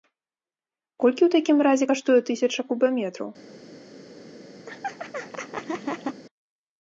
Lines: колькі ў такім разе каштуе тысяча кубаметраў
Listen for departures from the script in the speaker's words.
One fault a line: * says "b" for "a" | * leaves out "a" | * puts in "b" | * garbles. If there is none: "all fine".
all fine